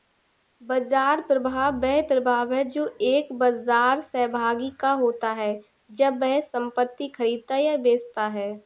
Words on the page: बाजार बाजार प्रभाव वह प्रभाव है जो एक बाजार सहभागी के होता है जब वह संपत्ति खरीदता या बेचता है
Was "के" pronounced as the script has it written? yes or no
no